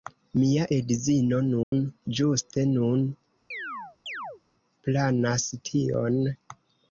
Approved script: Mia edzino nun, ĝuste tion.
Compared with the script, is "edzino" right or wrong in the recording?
right